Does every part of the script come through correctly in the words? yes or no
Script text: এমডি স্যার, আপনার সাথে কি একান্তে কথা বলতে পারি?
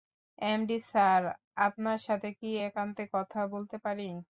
yes